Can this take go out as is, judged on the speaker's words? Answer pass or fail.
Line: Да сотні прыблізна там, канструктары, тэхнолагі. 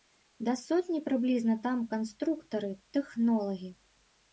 pass